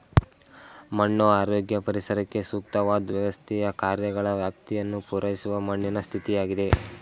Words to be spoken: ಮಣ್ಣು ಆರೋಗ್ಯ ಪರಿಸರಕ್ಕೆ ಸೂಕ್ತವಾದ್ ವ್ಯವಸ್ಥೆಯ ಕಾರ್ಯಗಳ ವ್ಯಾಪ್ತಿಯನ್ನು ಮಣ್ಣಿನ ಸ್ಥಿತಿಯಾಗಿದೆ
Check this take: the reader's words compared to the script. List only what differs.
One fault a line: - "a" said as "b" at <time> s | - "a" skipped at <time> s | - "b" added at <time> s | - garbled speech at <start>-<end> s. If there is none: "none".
- "ಪೂರೈಸುವ" added at 5.1 s